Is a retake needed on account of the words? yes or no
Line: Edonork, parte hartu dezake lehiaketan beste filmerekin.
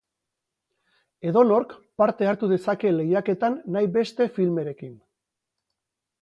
yes